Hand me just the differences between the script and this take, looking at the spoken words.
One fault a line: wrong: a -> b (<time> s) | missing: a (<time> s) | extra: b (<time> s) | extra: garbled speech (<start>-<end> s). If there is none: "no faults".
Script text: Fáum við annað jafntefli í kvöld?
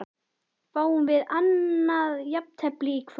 no faults